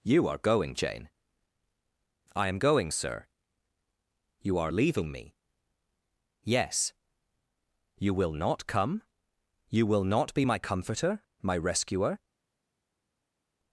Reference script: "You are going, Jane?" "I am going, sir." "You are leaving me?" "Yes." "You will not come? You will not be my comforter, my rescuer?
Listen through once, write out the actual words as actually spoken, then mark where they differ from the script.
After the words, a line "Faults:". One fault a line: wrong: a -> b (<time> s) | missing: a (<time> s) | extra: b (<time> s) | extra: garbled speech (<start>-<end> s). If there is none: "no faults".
"You are going, Jane?" "I am going, sir." "You are leaving me?" "Yes." "You will not come? You will not be my comforter, my rescuer?
Faults:
no faults